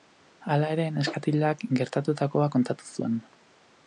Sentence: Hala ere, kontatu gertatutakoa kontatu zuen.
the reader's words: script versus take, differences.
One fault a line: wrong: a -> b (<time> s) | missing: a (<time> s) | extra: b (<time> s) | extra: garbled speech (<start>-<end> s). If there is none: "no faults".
wrong: kontatu -> neskatilak (0.9 s)